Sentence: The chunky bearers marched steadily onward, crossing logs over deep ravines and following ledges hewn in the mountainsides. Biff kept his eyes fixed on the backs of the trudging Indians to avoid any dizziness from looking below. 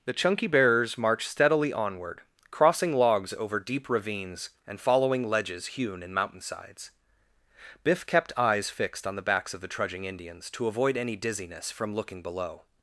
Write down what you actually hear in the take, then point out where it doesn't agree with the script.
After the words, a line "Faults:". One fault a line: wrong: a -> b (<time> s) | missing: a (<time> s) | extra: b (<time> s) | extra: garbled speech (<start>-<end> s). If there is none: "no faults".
The chunky bearers marched steadily onward, crossing logs over deep ravines and following ledges hewn in mountainsides. Biff kept eyes fixed on the backs of the trudging Indians to avoid any dizziness from looking below.
Faults:
missing: the (6.1 s)
missing: his (8.3 s)